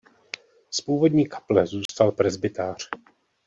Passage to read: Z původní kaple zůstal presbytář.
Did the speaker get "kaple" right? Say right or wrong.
right